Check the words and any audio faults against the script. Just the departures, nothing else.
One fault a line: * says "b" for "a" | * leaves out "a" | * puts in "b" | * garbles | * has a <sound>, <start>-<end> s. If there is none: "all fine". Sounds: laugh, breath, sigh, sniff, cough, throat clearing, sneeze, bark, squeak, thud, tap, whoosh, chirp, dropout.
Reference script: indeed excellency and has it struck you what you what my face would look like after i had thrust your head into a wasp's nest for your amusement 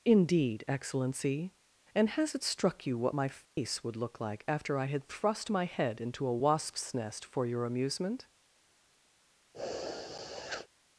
* leaves out "you what"
* has a dropout, 3.5-3.6 s
* says "my" for "your"
* has a sniff, 9.5-10.7 s